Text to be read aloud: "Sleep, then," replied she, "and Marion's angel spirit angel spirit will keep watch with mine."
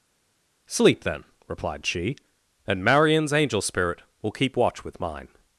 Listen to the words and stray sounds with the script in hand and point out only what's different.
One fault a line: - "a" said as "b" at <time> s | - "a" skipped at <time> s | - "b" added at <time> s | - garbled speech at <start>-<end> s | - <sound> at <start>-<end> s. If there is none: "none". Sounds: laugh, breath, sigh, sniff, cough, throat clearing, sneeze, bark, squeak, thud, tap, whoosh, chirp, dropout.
- "angel spirit" skipped at 4.0 s